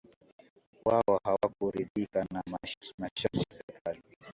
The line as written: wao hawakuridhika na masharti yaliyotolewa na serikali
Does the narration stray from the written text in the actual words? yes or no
yes